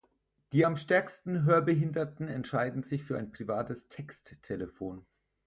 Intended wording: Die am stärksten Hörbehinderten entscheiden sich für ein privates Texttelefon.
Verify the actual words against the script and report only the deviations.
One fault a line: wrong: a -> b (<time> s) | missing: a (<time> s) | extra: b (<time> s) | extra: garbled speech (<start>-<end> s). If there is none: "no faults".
no faults